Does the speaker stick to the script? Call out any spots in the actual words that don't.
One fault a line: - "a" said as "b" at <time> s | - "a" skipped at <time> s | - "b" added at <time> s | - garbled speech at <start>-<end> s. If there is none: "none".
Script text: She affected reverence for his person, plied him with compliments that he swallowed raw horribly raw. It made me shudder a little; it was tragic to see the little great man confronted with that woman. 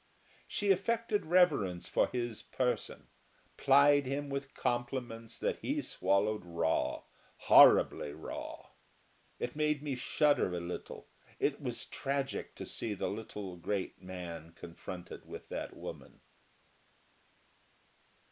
none